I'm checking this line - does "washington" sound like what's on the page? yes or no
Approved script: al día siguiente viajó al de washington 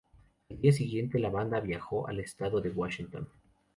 yes